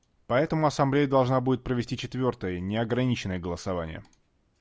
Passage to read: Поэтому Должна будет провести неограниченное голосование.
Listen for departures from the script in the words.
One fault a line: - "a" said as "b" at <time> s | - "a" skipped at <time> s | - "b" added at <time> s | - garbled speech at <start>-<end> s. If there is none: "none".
- "Ассамблея" added at 0.7 s
- "четвертое" added at 1.9 s